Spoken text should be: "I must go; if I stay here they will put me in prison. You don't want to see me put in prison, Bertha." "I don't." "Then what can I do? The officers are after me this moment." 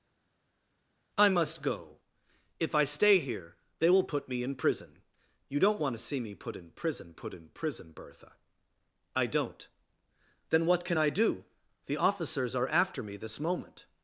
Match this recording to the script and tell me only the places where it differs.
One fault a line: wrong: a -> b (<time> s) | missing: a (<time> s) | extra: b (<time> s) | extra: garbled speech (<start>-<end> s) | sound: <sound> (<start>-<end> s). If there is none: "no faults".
extra: put in prison (7.1 s)